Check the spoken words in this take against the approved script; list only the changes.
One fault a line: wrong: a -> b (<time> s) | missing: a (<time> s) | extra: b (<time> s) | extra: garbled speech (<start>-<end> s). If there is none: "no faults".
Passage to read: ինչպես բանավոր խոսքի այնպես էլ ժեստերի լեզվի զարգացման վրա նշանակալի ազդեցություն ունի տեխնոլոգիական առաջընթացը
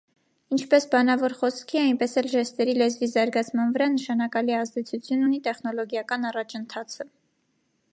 no faults